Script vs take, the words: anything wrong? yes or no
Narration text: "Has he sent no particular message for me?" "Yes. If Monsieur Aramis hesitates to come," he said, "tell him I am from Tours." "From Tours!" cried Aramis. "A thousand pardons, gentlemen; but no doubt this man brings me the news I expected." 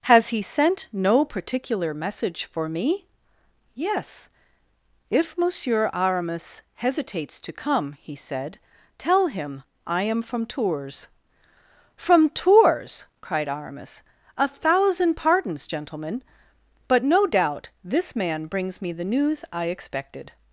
no